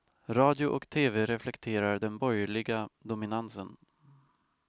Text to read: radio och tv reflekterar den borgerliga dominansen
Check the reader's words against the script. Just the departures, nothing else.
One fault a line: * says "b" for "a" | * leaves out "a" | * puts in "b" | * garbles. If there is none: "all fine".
all fine